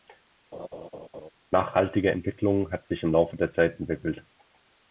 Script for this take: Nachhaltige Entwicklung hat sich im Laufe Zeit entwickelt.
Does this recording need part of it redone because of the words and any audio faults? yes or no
yes